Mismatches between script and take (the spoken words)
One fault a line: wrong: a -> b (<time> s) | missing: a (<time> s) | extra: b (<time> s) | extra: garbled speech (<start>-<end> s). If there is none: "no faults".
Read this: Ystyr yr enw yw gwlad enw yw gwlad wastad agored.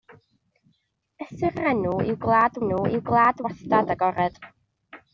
no faults